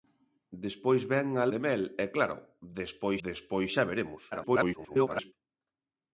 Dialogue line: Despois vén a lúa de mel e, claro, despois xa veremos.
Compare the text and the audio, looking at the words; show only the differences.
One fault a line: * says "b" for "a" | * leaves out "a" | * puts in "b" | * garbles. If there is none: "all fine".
* leaves out "lúa"
* puts in "despois"
* garbles